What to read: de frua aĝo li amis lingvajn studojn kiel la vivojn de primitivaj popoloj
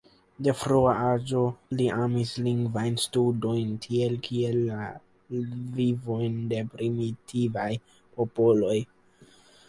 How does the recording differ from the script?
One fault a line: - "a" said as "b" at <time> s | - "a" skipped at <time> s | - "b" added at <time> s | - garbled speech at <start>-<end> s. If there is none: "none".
- "tiel" added at 3.9 s